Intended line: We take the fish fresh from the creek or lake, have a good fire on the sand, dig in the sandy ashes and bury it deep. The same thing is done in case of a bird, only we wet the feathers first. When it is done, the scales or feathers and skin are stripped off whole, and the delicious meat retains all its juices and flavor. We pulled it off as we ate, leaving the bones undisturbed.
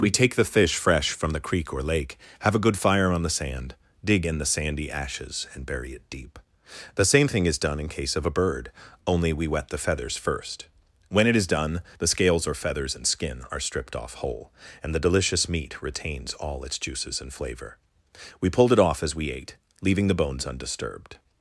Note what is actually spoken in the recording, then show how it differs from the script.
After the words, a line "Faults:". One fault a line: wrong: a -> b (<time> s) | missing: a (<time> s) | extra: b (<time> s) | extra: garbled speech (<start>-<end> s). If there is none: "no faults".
We take the fish fresh from the creek or lake, have a good fire on the sand, dig in the sandy ashes and bury it deep. The same thing is done in case of a bird, only we wet the feathers first. When it is done, the scales or feathers and skin are stripped off whole, and the delicious meat retains all its juices and flavor. We pulled it off as we ate, leaving the bones undisturbed.
Faults:
no faults